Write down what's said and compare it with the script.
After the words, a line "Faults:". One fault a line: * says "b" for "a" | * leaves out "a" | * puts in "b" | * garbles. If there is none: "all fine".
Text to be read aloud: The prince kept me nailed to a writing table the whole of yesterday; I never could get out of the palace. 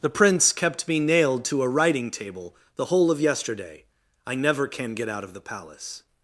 The prince kept me nailed to a writing table the whole of yesterday; I never can get out of the palace.
Faults:
* says "can" for "could"